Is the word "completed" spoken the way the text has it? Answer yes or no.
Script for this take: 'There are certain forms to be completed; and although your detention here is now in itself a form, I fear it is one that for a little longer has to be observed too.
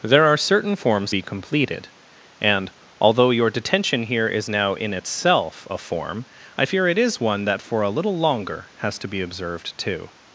yes